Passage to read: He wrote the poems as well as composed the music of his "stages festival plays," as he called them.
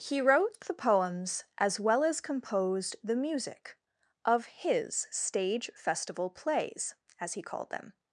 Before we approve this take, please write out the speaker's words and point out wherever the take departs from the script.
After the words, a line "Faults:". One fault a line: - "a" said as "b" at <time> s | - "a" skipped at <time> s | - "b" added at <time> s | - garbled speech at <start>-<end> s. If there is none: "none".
He wrote the poems as well as composed the music of his "stage festival plays," as he called them.
Faults:
- "stages" said as "stage" at 5.1 s